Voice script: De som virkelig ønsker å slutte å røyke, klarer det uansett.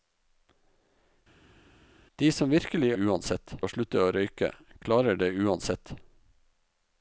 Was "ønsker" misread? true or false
true